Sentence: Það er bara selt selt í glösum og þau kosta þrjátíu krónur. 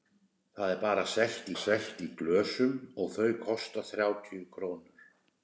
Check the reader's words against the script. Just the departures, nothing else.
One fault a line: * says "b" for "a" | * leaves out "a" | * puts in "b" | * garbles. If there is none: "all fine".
all fine